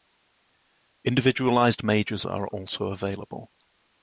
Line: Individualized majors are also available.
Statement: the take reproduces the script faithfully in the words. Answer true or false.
true